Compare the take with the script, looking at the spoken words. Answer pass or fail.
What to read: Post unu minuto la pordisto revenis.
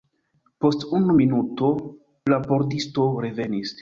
pass